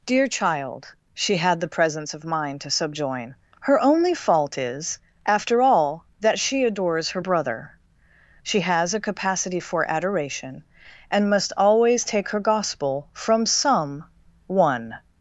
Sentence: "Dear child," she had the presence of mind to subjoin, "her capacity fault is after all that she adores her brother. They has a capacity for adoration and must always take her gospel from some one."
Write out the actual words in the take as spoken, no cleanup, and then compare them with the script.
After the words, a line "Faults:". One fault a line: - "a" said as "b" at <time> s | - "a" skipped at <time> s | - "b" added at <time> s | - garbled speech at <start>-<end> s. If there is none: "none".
"Dear child," she had the presence of mind to subjoin, "her only fault is after all that she adores her brother. She has a capacity for adoration and must always take her gospel from some one."
Faults:
- "capacity" said as "only" at 3.8 s
- "They" said as "She" at 8.4 s